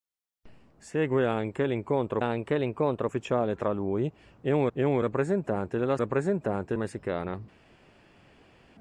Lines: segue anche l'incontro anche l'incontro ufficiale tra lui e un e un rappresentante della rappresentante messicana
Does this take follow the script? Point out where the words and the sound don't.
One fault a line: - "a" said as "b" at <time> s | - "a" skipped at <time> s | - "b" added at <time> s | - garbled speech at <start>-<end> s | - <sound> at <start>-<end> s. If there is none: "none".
none